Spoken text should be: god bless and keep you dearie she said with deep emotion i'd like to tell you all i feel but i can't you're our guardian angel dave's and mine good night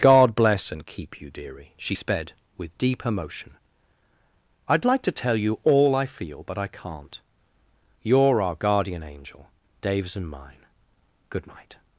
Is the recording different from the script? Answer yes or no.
yes